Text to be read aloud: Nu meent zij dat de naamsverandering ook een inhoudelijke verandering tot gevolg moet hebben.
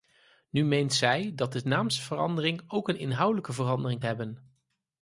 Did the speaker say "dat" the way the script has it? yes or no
yes